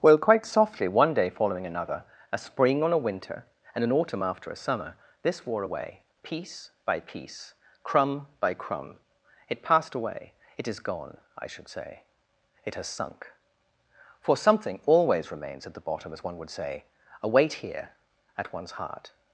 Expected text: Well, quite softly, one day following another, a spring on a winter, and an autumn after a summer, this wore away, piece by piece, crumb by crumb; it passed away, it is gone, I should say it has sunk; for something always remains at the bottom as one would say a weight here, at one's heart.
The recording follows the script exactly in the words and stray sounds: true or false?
true